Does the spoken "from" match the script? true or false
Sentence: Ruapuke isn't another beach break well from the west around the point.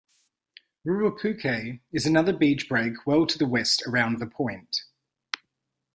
false